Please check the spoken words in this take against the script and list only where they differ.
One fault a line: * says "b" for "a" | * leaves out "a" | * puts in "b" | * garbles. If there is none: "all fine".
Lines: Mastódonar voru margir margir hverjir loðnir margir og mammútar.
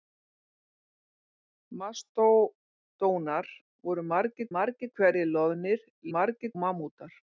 all fine